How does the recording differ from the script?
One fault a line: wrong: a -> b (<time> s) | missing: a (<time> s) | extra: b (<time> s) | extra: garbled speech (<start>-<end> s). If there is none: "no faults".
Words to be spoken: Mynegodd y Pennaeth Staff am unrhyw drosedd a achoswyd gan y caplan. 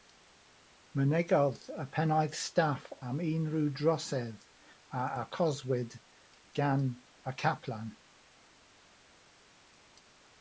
no faults